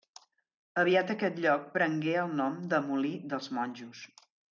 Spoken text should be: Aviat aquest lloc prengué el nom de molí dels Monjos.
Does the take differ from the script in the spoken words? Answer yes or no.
no